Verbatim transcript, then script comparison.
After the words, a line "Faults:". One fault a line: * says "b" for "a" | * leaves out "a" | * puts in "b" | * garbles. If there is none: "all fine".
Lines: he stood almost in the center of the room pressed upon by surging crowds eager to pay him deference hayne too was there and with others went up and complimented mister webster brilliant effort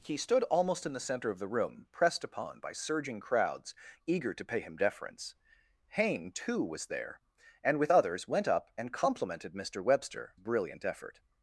he stood almost in the center of the room pressed upon by surging crowds eager to pay him deference hayne too was there and with others went up and complimented mister webster brilliant effort
Faults:
all fine